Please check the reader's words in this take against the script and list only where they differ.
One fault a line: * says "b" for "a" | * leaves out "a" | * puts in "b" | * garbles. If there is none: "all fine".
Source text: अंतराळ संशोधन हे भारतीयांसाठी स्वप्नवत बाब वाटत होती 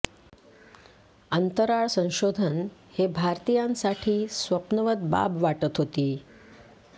all fine